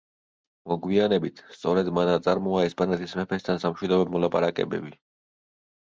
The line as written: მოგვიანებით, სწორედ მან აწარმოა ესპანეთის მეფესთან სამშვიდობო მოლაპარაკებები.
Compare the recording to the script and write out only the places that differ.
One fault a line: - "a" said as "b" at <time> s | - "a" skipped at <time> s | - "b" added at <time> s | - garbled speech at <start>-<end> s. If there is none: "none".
none